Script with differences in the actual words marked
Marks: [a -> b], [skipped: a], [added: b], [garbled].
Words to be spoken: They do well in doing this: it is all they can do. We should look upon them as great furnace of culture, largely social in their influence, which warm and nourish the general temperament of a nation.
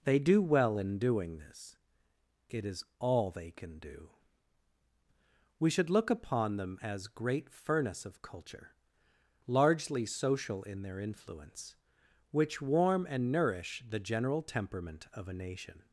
They do well in doing this: it is all they can do. We should look upon them as great furnace of culture, largely social in their influence, which warm and nourish the general temperament of a nation.